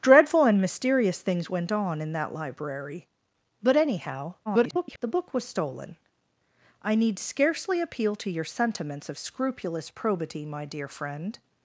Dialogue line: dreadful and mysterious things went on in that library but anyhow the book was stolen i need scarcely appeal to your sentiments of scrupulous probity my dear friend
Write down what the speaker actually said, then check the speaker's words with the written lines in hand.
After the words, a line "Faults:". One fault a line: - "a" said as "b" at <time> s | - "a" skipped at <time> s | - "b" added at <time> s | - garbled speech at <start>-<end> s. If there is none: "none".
dreadful and mysterious things went on in that library but anyhow [garbled] the book was stolen i need scarcely appeal to your sentiments of scrupulous probity my dear friend
Faults:
- garbled speech at 4.5-5.0 s